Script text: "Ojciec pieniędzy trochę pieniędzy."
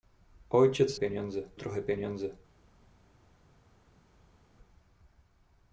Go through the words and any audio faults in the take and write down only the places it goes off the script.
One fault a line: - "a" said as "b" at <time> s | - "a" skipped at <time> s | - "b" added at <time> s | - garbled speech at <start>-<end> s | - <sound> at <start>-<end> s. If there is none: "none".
none